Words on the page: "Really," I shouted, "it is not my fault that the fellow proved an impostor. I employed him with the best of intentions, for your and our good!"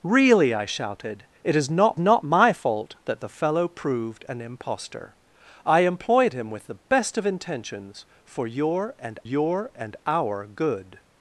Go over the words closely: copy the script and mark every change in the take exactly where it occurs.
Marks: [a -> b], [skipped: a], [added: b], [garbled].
"Really," I shouted, "it is not [added: not] my fault that the fellow proved an impostor. I employed him with the best of intentions, for your and [added: your and] our good!"